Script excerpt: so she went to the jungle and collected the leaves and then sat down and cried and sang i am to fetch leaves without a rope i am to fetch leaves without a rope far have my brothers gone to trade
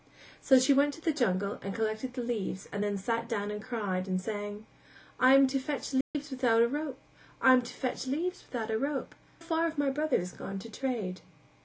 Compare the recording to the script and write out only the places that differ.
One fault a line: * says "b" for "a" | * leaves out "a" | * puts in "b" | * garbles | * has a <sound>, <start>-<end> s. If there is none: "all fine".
* has a dropout, 6.0-6.1 s